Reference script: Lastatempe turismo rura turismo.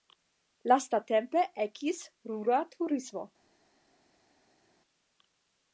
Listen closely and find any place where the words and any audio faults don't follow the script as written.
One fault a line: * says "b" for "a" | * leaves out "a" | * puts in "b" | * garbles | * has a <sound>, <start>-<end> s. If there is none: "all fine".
* says "ekis" for "turismo"